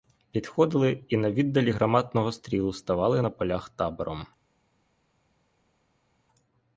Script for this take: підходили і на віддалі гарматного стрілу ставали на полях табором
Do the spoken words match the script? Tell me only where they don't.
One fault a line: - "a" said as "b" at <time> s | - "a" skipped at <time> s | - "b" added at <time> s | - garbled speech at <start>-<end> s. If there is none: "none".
none